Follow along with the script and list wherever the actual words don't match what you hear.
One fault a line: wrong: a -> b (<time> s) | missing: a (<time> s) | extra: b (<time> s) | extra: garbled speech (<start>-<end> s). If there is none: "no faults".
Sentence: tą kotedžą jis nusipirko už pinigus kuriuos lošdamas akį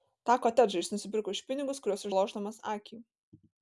no faults